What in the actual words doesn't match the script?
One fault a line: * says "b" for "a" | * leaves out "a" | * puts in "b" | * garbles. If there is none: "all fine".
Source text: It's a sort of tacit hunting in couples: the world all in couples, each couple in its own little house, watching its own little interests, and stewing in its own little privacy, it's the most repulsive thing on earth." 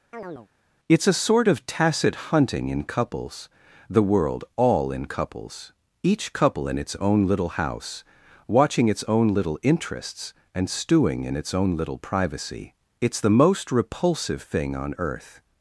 all fine